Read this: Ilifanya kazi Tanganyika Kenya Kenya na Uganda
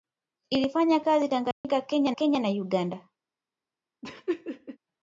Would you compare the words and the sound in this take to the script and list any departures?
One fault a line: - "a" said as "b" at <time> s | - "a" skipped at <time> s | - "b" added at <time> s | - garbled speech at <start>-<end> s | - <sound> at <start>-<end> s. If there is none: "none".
- dropout at 1.5-1.6 s
- laugh at 4.0-4.8 s